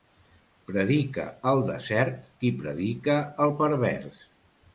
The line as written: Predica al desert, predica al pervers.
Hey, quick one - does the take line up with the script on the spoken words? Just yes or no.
no